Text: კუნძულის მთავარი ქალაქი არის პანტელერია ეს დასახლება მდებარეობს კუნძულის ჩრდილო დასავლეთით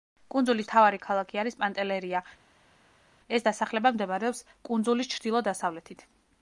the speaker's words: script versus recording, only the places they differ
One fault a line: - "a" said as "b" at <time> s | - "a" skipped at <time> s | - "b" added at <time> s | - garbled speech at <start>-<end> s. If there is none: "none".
none